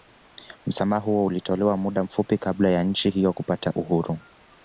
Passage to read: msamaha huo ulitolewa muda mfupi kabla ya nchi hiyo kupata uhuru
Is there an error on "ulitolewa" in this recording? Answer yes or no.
no